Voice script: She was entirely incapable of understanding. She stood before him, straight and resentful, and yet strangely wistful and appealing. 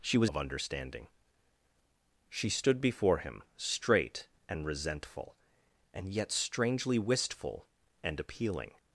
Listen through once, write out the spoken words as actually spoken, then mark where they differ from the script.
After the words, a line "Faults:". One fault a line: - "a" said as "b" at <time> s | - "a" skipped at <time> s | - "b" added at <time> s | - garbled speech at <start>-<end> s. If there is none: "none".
She was of understanding. She stood before him, straight and resentful, and yet strangely wistful and appealing.
Faults:
- "entirely incapable" skipped at 0.3 s